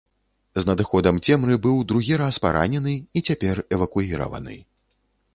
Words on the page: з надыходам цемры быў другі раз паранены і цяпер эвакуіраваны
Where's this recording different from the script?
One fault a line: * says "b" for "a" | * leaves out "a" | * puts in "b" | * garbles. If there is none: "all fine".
all fine